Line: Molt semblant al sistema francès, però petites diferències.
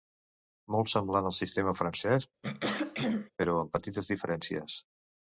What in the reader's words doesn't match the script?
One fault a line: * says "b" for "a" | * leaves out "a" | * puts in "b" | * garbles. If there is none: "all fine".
* puts in "amb"